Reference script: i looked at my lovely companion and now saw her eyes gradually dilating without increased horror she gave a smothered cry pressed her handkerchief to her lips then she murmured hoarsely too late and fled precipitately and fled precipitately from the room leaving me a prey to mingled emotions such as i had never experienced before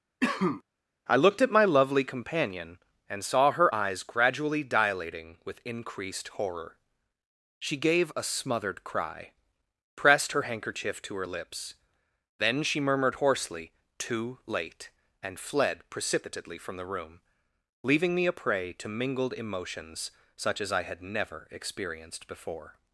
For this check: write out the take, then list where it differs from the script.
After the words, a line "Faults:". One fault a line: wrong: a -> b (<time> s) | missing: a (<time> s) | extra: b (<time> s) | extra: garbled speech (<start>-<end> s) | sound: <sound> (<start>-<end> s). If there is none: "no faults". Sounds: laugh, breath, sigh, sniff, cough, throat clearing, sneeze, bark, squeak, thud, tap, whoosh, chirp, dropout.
i looked at my lovely companion and saw her eyes gradually dilating with increased horror she gave a smothered cry pressed her handkerchief to her lips then she murmured hoarsely too late and fled precipitately from the room leaving me a prey to mingled emotions such as i had never experienced before
Faults:
sound: cough (0.2-0.6 s)
missing: now (3.2 s)
wrong: without -> with (5.4 s)
missing: and fled precipitately (16.6 s)